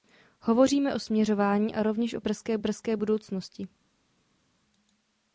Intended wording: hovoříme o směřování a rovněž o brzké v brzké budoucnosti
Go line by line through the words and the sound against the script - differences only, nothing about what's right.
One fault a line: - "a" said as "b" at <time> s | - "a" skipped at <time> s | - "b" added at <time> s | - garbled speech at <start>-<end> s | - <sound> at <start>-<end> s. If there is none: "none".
none